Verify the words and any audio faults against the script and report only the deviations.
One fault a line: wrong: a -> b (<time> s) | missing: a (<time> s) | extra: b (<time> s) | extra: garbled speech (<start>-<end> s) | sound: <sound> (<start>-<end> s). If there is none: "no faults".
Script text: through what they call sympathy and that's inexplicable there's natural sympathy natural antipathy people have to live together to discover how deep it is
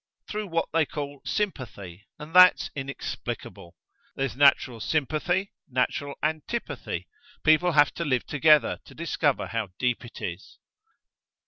no faults